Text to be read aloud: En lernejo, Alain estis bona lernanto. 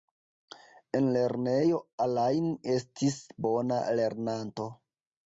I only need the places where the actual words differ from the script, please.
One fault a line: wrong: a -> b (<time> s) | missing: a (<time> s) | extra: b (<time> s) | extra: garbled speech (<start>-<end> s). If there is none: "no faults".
no faults